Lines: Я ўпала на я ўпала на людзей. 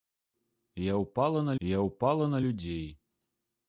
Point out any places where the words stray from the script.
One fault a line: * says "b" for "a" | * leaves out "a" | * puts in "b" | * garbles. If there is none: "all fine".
all fine